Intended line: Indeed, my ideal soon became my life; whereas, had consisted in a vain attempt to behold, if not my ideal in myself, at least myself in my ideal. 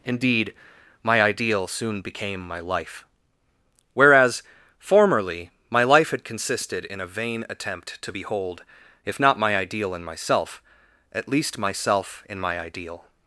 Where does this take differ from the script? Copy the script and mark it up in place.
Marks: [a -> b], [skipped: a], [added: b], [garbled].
Indeed, my ideal soon became my life; whereas, [added: formerly my life] had consisted in a vain attempt to behold, if not my ideal in myself, at least myself in my ideal.